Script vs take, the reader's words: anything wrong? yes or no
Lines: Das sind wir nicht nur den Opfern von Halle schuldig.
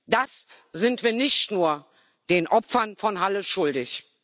no